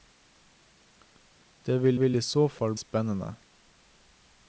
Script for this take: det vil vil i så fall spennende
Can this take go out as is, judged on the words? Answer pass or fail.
pass